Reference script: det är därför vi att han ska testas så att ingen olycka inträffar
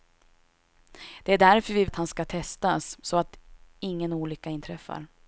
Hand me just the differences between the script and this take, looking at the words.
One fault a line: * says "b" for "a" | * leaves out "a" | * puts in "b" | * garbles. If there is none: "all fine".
all fine